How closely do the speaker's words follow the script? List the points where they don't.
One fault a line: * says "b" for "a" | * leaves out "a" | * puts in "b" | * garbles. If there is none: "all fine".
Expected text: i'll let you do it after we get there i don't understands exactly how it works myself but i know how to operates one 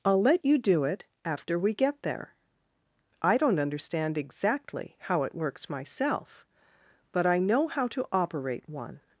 * says "understand" for "understands"
* says "operate" for "operates"